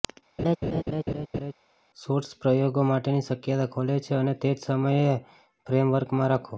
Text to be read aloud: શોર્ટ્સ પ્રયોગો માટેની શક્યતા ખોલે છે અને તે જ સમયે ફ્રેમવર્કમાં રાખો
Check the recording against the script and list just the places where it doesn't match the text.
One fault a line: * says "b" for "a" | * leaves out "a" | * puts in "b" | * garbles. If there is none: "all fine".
all fine